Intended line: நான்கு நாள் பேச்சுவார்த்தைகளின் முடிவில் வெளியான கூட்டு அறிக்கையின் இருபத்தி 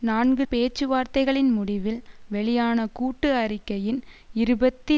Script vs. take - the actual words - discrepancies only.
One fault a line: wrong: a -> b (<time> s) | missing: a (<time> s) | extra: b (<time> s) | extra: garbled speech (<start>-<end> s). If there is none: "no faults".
missing: நாள் (0.5 s)